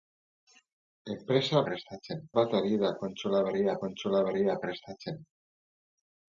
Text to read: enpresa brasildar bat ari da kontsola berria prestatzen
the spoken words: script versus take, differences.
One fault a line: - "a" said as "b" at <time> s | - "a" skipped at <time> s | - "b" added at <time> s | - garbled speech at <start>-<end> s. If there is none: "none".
- "brasildar" said as "prestatzen" at 1.7 s
- "kontsola berria" added at 3.8 s